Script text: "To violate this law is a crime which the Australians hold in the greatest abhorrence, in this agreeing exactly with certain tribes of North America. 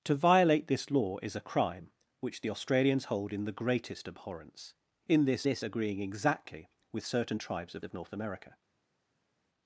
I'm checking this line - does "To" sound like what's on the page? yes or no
yes